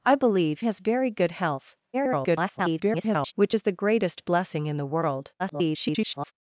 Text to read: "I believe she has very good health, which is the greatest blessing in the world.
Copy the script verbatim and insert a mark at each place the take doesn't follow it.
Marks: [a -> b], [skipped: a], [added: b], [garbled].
"I believe [skipped: she] has very good health, [garbled] which is the greatest blessing in the world. [garbled]